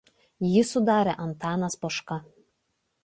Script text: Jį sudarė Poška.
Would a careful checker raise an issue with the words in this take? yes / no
yes